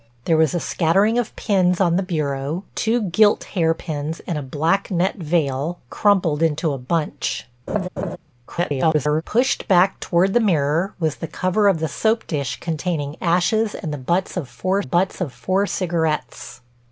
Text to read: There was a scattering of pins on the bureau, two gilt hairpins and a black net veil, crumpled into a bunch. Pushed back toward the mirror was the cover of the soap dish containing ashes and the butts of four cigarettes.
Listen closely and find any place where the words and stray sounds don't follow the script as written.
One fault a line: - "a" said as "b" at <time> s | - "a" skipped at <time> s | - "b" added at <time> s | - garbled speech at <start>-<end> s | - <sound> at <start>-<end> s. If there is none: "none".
- laugh at 7.7-8.2 s
- garbled speech at 8.5-9.2 s
- "butts of four" added at 14.8 s